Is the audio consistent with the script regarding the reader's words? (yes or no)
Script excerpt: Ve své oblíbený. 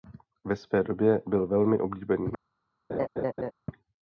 no